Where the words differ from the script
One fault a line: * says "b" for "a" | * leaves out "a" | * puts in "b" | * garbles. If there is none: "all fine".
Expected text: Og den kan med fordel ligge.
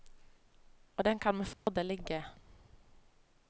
all fine